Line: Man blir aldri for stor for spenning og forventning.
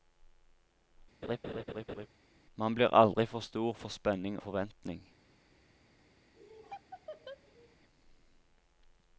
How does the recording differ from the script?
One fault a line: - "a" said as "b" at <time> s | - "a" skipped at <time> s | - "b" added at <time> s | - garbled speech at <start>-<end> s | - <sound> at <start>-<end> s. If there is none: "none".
- laugh at 1.2-2.1 s
- "og" skipped at 4.4 s
- laugh at 6.4-7.8 s